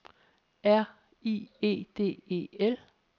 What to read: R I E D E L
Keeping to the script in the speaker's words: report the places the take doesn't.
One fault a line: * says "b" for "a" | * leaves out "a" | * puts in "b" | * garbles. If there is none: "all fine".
all fine